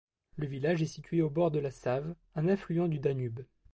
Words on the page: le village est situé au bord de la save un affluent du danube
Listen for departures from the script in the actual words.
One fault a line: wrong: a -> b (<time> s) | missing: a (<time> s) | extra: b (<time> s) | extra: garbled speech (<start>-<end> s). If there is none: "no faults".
no faults